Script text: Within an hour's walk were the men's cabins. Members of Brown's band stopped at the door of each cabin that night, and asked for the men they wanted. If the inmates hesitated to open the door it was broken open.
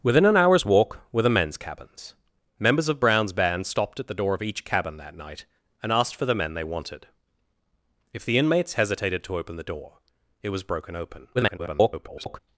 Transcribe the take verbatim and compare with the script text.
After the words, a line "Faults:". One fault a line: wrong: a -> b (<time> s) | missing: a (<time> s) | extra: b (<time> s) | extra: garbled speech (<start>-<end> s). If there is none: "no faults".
Within an hour's walk were the men's cabins. Members of Brown's band stopped at the door of each cabin that night, and asked for the men they wanted. If the inmates hesitated to open the door it was broken open. [garbled]
Faults:
extra: garbled speech (11.3-12.4 s)